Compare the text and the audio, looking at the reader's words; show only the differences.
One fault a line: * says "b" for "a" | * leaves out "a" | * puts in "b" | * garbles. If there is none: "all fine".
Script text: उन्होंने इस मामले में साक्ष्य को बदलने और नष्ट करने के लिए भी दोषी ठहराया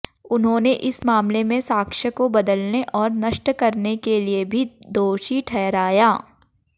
all fine